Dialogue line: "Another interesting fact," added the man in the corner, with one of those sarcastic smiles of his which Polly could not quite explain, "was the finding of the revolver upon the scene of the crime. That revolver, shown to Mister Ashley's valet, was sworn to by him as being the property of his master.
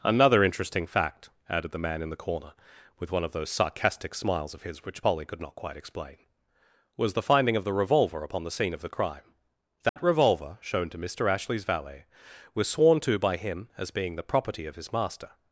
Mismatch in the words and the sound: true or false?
true